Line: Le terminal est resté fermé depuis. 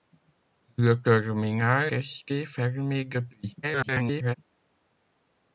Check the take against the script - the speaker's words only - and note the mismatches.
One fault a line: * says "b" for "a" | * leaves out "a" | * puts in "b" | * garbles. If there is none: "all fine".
* leaves out "est"
* garbles